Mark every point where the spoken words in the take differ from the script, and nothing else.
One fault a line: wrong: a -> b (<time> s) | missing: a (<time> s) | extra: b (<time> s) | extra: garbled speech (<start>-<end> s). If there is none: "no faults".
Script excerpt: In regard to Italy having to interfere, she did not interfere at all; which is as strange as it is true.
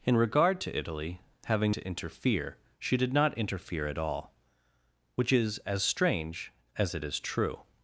no faults